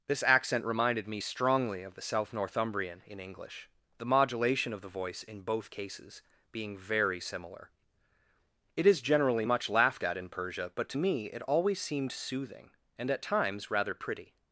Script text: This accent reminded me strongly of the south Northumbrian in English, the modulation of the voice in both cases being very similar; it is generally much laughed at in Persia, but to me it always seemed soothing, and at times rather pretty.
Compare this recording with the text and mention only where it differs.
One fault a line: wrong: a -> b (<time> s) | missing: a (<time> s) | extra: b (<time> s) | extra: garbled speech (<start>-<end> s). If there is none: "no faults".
no faults